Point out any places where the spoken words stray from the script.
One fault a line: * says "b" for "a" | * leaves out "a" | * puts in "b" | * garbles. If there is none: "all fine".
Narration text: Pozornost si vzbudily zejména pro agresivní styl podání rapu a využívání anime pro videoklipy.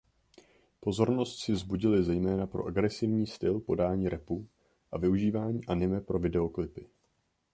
all fine